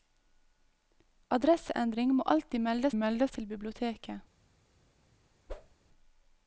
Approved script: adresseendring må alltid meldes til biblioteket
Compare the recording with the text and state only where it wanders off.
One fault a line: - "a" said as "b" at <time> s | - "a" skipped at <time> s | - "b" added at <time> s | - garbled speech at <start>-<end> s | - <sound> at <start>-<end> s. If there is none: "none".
- "meldes" added at 2.9 s
- whoosh at 5.5-5.7 s